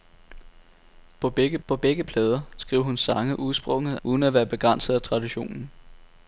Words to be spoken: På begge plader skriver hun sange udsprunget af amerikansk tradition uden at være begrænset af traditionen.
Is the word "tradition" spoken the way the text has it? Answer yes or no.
no